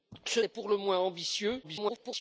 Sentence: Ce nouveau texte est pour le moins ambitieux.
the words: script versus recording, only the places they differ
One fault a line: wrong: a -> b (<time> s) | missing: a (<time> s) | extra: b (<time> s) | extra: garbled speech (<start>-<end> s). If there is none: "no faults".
missing: nouveau texte (0.4 s)
extra: garbled speech (1.6-2.2 s)